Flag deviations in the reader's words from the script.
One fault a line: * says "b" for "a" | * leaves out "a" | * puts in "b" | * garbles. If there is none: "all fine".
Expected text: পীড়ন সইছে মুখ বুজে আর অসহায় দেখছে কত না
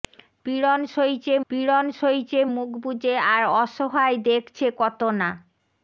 * puts in "পীড়ন সইছে"